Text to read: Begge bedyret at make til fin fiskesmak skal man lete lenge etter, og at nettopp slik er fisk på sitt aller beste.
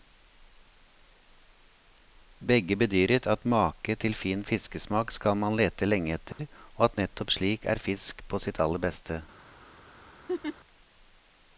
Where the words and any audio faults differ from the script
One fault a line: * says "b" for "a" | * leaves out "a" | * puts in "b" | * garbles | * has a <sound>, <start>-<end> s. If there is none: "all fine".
* has a dropout, 6.3-6.4 s
* has a laugh, 10.3-10.6 s